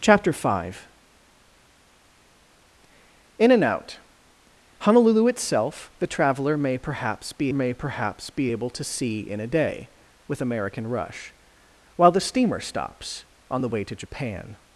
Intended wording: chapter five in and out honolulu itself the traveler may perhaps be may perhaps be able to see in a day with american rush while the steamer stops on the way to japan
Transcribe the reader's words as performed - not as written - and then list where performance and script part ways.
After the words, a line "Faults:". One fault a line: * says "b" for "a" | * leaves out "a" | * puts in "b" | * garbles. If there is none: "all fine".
chapter five in and out honolulu itself the traveler may perhaps be may perhaps be able to see in a day with american rush while the steamer stops on the way to japan
Faults:
all fine